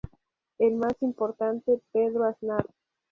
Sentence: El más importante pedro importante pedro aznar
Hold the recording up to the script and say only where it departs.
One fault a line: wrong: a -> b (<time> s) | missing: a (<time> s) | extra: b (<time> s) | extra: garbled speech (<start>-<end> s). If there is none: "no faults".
missing: importante pedro (2.2 s)